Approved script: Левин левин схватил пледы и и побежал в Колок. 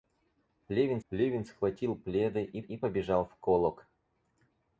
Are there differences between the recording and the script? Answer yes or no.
no